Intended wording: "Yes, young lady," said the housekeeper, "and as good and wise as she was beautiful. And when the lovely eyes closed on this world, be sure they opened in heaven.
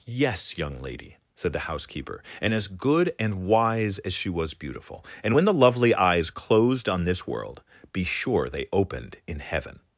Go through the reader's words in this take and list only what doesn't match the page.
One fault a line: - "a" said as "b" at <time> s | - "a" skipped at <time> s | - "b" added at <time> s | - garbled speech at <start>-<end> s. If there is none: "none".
none